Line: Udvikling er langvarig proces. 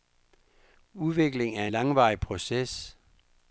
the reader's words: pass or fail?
pass